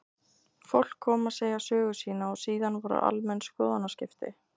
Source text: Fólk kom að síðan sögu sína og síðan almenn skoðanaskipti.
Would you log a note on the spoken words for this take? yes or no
yes